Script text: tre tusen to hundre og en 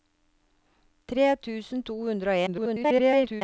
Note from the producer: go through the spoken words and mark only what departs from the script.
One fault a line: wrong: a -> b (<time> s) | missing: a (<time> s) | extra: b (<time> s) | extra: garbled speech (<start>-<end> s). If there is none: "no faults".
extra: garbled speech (2.5-3.4 s)